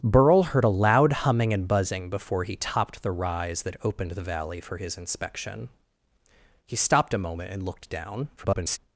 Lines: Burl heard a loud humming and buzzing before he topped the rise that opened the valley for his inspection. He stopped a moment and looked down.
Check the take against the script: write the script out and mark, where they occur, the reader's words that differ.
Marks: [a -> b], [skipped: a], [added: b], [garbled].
Burl heard a loud humming and buzzing before he topped the rise that opened the valley for his inspection. He stopped a moment and looked down. [garbled]